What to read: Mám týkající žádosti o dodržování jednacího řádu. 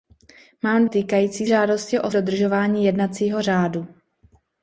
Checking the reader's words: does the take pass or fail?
pass